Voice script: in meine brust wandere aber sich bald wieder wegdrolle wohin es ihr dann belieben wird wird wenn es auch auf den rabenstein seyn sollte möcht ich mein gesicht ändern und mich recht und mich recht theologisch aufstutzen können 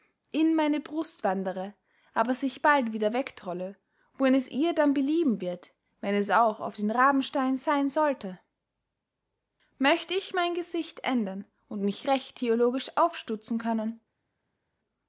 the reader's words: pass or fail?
fail